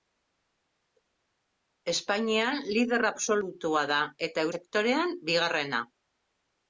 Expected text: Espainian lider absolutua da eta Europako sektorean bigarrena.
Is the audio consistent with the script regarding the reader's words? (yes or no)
no